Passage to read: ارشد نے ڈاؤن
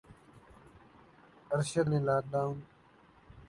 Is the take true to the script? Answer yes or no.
no